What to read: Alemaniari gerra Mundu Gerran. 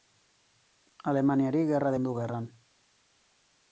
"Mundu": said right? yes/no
yes